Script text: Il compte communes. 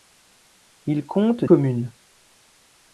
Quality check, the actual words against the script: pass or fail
pass